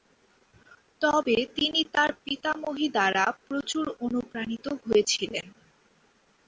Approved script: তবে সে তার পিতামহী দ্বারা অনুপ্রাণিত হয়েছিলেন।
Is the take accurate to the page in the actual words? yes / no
no